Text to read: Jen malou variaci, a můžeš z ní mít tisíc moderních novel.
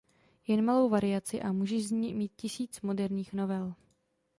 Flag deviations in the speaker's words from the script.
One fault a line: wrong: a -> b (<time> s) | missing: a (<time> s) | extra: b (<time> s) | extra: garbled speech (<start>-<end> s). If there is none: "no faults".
no faults